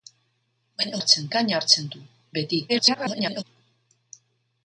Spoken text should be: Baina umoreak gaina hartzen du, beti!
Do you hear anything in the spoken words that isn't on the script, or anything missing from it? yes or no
yes